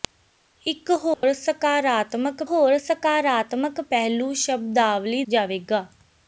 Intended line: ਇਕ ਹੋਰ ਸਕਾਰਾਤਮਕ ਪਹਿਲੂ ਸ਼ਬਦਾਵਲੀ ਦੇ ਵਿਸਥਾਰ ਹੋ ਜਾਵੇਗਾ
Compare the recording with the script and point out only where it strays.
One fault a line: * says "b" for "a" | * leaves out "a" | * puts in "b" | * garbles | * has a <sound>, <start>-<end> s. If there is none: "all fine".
* has a dropout, 1.1-1.2 s
* puts in "ਹੋਰ ਸਕਾਰਾਤਮਕ"
* leaves out "ਦੇ ਵਿਸਥਾਰ ਹੋ"